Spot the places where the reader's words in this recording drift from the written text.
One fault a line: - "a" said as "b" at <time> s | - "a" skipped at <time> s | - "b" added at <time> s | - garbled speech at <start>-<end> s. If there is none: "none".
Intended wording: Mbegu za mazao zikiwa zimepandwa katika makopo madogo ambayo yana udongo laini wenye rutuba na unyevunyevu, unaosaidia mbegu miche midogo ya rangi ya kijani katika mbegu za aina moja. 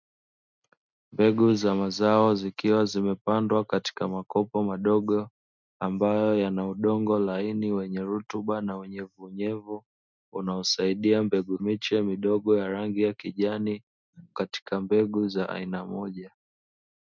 none